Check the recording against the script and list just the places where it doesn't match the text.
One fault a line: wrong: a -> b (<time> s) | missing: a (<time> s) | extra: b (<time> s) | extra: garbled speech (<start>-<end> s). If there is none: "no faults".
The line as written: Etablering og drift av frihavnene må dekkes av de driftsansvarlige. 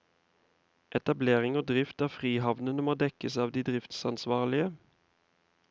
no faults